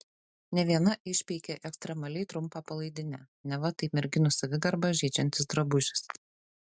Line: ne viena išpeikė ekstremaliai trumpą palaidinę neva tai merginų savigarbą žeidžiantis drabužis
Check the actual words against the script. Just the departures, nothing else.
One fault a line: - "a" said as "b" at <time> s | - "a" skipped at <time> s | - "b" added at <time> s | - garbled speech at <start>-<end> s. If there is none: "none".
none